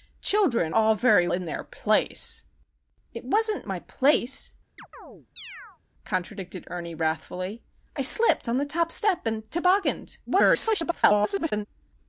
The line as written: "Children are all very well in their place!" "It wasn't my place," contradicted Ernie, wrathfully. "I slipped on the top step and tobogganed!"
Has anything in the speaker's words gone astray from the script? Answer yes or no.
yes